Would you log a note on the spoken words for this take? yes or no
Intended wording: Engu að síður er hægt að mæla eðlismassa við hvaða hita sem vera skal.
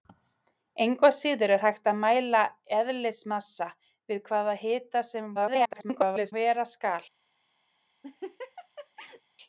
yes